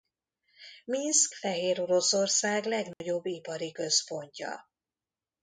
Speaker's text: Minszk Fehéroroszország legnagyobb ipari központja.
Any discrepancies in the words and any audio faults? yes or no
yes